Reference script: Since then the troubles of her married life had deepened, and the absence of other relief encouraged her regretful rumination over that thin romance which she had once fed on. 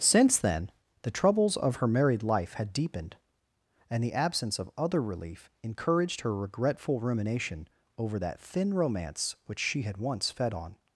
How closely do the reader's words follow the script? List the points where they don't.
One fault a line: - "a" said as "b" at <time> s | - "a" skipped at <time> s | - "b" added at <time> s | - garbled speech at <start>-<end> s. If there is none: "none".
none